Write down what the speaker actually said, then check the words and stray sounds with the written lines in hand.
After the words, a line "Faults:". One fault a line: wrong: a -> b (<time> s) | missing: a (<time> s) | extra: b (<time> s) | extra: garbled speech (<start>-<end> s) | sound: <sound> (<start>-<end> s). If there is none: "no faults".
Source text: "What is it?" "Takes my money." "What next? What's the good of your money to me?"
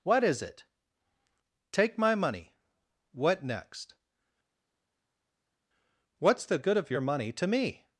"What is it?" "Take my money." "What next? What's the good of your money to me?"
Faults:
wrong: Takes -> Take (1.7 s)